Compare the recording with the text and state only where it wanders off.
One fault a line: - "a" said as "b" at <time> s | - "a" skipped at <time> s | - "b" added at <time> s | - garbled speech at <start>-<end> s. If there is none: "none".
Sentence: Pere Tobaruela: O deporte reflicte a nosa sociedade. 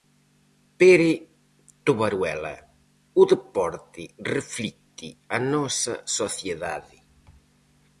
none